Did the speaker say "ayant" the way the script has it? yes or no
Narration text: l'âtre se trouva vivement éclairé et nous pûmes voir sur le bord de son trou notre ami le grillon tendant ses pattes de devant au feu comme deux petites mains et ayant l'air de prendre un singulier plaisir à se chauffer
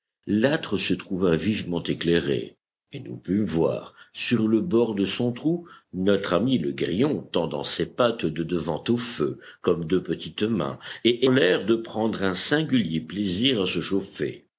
no